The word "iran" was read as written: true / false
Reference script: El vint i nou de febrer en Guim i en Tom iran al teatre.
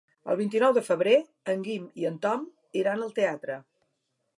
true